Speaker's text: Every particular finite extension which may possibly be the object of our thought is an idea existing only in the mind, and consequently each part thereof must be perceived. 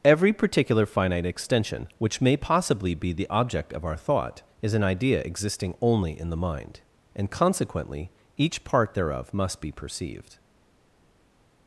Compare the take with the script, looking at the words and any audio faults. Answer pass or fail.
pass